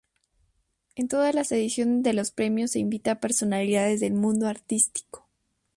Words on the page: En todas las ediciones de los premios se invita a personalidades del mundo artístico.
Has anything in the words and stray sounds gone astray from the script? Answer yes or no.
no